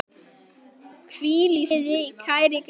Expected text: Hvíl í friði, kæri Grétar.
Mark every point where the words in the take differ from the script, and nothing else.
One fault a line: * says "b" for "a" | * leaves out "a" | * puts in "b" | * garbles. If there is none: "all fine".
* leaves out "friði kæri"